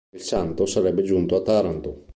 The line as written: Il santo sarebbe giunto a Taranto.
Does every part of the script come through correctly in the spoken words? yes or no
yes